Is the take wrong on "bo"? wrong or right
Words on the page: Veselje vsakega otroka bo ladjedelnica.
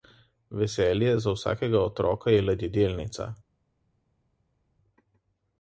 wrong